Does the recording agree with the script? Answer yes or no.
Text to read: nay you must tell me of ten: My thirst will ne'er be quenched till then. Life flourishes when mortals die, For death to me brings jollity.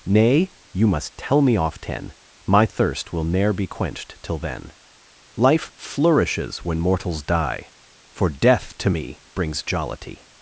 no